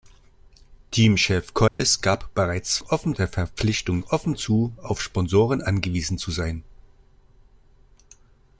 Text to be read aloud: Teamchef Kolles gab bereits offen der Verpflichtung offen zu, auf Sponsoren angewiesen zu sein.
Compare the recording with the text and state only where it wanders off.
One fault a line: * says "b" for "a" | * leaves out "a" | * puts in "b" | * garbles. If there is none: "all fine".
all fine